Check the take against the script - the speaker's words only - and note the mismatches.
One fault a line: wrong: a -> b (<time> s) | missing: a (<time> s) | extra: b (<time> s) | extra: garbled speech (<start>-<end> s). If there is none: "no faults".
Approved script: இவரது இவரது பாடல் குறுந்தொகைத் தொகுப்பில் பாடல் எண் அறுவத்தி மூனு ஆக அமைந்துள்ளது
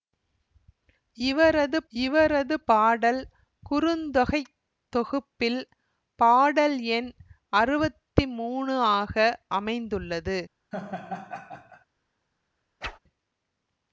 no faults